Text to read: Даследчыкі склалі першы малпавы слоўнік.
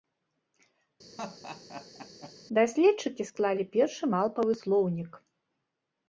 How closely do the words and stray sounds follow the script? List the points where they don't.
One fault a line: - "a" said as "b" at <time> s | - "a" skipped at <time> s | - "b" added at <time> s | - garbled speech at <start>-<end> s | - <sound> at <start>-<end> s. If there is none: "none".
- laugh at 1.2-2.3 s